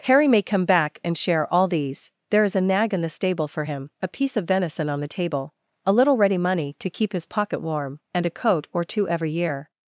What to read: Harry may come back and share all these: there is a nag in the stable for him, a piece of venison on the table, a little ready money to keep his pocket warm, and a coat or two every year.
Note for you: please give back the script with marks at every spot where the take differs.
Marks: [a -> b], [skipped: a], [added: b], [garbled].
Harry may come back and share all these: there is a nag in the stable for him, a piece of venison on the table, a little ready money to keep his pocket warm, and a coat or two every year.